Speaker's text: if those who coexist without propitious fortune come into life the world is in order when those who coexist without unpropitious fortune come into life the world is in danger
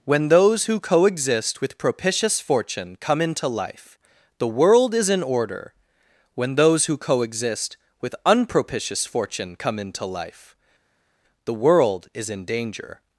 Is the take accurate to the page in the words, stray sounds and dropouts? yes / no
no